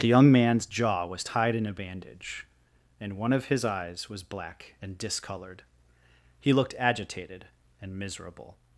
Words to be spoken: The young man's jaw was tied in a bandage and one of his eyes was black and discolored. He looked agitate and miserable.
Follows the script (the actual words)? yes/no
no